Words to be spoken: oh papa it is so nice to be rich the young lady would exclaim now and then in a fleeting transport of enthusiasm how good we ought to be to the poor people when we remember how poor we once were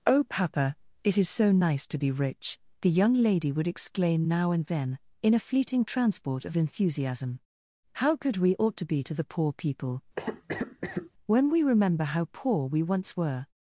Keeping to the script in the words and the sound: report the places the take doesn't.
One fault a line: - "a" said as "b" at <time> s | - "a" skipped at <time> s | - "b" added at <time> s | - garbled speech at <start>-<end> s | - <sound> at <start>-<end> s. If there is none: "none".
- cough at 10.2-11.1 s